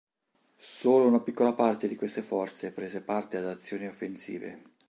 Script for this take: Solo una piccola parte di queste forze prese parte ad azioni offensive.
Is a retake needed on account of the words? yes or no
no